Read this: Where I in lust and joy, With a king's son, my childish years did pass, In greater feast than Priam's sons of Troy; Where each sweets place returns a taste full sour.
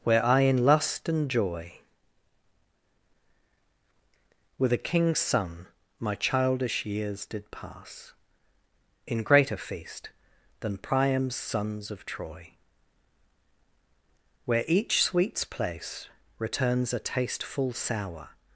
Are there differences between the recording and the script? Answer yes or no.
no